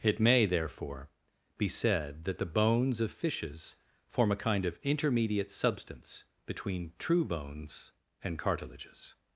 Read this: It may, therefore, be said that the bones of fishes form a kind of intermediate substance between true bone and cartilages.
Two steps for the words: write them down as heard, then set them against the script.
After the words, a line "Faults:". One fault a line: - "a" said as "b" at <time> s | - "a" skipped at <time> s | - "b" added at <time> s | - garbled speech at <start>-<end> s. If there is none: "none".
It may, therefore, be said that the bones of fishes form a kind of intermediate substance between true bones and cartilages.
Faults:
- "bone" said as "bones" at 7.2 s